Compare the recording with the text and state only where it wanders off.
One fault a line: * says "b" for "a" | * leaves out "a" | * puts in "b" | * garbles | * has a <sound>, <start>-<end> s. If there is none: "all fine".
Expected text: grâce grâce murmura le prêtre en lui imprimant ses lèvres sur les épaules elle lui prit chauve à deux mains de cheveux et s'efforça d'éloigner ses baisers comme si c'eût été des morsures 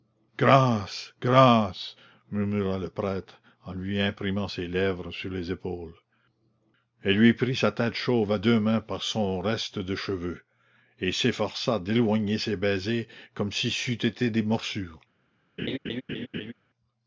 * puts in "sa tête"
* puts in "par son reste"
* has a laugh, 15.6-16.5 s